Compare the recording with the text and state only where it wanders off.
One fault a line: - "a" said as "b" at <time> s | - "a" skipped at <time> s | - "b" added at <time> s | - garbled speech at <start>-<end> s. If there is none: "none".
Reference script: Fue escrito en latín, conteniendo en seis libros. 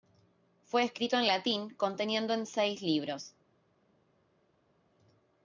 none